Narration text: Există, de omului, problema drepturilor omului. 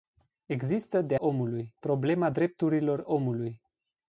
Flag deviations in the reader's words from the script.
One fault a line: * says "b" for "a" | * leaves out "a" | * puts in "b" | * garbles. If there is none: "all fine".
all fine